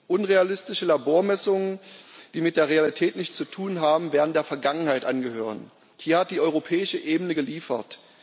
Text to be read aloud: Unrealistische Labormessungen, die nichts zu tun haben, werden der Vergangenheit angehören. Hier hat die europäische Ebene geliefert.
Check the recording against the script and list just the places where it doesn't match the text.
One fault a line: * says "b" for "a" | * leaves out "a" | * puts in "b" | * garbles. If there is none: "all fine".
* puts in "mit der Realität"